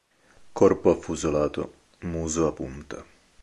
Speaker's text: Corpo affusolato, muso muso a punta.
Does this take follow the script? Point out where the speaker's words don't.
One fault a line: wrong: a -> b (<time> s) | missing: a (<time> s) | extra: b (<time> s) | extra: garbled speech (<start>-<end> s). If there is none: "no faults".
missing: muso (2.5 s)